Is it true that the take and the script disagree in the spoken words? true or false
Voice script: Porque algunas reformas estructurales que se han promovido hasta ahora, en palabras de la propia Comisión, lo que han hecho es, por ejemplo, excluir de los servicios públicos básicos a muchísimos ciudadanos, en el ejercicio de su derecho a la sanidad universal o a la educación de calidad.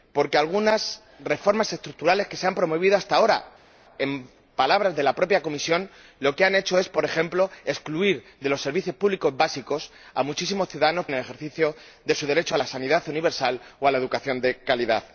false